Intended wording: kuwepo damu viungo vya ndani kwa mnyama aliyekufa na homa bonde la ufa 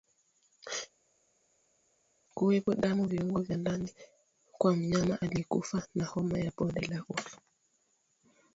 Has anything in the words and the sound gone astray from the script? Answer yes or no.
yes